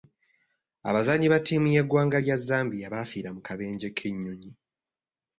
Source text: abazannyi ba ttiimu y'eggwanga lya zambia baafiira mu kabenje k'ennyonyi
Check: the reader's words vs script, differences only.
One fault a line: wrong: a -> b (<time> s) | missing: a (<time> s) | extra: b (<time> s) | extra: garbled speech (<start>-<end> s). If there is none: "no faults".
no faults